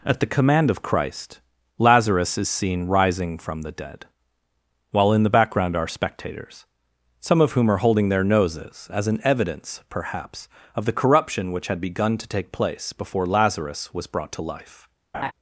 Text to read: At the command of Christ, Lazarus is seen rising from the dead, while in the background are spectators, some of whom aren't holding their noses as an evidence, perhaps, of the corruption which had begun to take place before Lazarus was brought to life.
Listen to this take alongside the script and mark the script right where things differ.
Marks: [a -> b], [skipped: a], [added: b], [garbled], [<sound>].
At the command of Christ, Lazarus is seen rising from the dead, while in the background are spectators, some of whom [aren't -> are] holding their noses as an evidence, perhaps, of the corruption which had begun to take place before Lazarus was brought to life. [laugh]